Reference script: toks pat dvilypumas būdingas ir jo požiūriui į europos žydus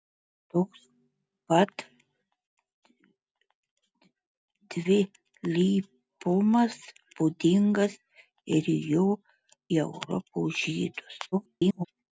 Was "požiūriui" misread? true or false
true